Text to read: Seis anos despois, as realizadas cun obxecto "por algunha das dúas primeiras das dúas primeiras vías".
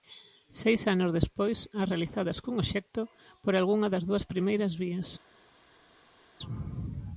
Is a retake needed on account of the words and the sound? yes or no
yes